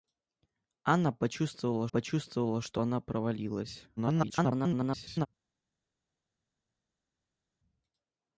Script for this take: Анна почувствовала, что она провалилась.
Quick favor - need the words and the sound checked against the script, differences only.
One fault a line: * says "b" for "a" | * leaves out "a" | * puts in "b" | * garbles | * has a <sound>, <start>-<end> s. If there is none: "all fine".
* puts in "почувствовала"
* garbles